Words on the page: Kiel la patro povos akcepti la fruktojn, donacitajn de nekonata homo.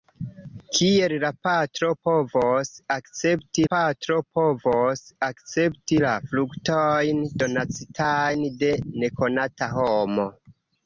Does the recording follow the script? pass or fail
fail